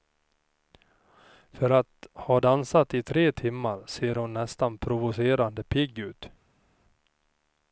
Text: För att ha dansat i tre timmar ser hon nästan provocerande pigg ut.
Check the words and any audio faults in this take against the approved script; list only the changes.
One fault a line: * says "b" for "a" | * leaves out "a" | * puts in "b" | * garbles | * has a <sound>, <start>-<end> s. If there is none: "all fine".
all fine